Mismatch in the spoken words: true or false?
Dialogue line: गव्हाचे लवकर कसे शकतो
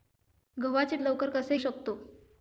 false